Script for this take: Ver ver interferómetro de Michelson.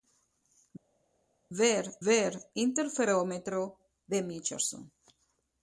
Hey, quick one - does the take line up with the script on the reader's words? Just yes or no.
yes